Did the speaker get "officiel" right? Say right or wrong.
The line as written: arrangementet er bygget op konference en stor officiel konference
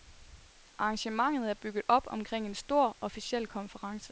right